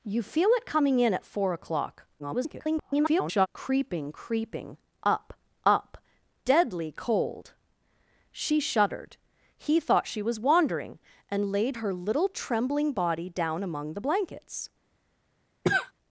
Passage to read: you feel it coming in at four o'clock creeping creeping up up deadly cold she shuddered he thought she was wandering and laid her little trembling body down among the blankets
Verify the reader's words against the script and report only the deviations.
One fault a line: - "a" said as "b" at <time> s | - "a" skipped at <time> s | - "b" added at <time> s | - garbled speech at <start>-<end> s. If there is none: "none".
- garbled speech at 2.2-3.5 s